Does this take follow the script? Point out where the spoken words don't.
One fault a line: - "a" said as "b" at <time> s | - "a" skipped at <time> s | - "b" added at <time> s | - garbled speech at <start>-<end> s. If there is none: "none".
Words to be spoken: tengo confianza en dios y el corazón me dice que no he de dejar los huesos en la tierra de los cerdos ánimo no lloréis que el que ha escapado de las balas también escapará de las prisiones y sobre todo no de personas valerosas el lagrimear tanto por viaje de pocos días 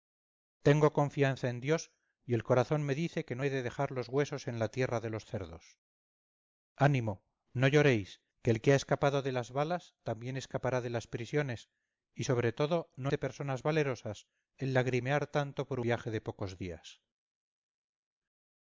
none